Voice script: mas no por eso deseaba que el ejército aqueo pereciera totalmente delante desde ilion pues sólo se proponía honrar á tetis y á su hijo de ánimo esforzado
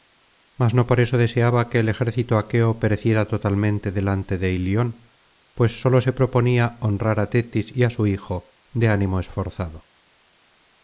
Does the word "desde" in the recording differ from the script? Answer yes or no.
yes